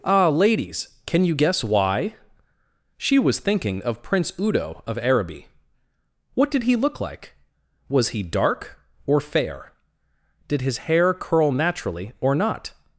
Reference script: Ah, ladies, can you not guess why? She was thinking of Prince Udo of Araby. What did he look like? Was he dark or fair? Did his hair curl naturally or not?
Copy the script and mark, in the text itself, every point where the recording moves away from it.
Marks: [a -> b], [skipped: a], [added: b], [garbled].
Ah, ladies, can you [skipped: not] guess why? She was thinking of Prince Udo of Araby. What did he look like? Was he dark or fair? Did his hair curl naturally or not?